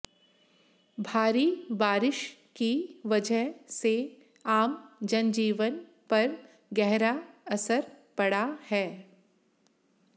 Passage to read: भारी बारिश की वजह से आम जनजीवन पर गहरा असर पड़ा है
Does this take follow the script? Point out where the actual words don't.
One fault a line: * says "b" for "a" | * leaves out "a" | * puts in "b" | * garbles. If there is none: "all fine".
all fine